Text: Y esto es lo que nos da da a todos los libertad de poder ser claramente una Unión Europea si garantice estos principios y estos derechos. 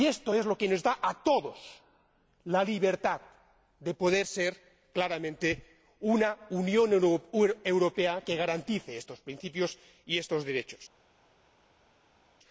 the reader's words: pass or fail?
fail